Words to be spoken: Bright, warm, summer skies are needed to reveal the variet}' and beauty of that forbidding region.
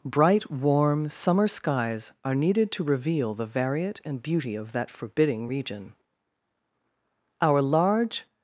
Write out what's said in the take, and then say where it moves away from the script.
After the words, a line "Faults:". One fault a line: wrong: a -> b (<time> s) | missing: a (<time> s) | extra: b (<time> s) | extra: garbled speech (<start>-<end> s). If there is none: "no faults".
Bright, warm, summer skies are needed to reveal the variet}' and beauty of that forbidding region. Our large
Faults:
extra: Our large (7.4 s)